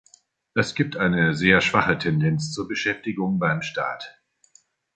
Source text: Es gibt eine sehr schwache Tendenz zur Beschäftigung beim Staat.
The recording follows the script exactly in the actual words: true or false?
true